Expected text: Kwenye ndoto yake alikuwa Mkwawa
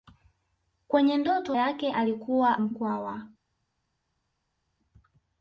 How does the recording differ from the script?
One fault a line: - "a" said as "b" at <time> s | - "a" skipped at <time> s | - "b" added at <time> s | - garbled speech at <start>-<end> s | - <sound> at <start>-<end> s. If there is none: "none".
none